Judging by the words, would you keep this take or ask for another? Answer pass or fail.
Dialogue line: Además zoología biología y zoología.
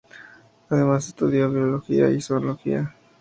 fail